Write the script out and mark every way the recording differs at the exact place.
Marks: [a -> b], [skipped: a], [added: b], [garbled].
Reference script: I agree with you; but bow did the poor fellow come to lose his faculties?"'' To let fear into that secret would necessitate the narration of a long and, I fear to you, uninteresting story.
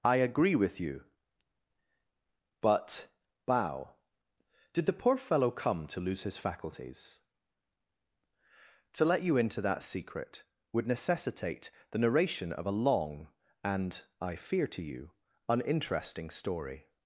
I agree with you; but bow did the poor fellow come to lose his faculties?"'' To let [fear -> you] into that secret would necessitate the narration of a long and, I fear to you, uninteresting story.